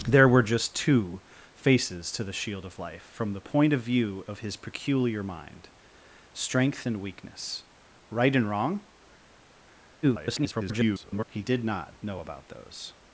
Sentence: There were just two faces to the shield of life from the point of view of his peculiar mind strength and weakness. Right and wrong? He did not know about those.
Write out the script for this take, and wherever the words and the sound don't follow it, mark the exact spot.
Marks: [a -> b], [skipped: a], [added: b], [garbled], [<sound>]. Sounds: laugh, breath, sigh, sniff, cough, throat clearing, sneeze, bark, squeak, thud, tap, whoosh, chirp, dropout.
There were just two faces to the shield of life from the point of view of his peculiar mind strength and weakness. Right and wrong? [garbled] He did not know about those.